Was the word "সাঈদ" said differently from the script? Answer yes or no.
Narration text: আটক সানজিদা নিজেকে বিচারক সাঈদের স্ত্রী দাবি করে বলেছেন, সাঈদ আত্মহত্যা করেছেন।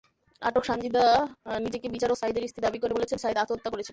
no